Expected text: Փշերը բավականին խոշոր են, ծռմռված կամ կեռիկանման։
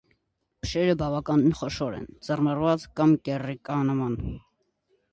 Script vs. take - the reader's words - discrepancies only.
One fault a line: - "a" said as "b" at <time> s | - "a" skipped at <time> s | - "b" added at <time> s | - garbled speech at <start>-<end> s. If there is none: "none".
none